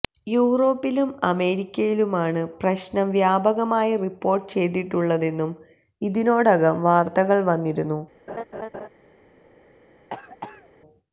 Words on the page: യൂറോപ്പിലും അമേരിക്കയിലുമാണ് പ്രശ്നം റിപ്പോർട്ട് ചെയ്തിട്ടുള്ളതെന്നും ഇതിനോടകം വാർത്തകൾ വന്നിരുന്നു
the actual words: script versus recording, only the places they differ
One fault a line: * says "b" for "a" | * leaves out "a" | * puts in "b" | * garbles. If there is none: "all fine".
* puts in "വ്യാപകമായി"